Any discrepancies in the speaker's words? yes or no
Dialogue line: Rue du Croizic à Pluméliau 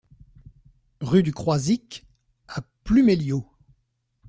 no